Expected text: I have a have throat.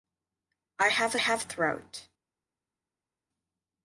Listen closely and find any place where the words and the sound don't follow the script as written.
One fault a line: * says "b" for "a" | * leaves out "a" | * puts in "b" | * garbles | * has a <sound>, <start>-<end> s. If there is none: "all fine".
all fine